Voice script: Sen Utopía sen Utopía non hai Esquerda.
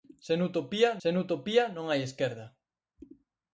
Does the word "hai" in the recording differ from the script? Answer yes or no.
no